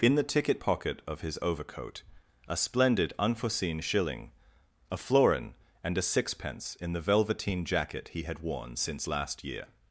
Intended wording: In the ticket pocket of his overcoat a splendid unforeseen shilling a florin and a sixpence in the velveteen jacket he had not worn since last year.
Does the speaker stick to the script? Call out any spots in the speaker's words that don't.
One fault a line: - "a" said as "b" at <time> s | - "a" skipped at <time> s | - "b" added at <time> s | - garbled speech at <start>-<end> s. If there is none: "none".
- "not" skipped at 8.4 s